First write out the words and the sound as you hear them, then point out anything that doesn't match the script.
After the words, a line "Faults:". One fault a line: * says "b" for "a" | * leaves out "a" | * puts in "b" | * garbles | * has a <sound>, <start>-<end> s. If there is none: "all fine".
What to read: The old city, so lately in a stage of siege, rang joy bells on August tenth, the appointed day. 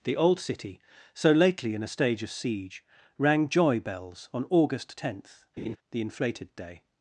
The old city, so lately in a stage of siege, rang joy bells on August tenth, the inflated day.
Faults:
* has a laugh, 5.6-5.8 s
* says "inflated" for "appointed"